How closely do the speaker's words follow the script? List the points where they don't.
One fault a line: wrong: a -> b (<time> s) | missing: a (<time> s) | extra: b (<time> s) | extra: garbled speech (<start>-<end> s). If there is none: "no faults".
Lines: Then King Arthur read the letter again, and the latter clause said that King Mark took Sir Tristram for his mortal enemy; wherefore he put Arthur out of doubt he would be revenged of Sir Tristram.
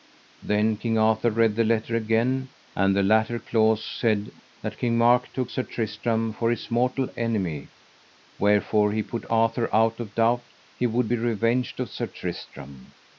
no faults